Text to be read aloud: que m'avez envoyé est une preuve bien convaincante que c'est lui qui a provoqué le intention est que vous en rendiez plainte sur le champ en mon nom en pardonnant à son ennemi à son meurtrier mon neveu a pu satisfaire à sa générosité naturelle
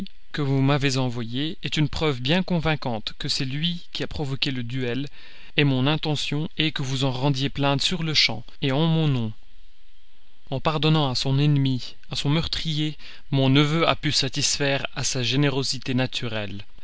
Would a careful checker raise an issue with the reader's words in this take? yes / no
yes